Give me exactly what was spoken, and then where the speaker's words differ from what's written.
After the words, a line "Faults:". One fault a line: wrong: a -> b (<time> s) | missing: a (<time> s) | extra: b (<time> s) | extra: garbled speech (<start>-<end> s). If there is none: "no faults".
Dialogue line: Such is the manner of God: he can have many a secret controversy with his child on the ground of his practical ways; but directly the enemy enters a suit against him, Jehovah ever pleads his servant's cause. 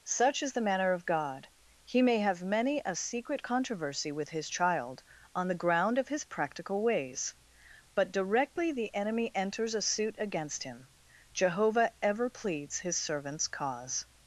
Such is the manner of God: he may have many a secret controversy with his child on the ground of his practical ways; but directly the enemy enters a suit against him, Jehovah ever pleads his servant's cause.
Faults:
wrong: can -> may (2.0 s)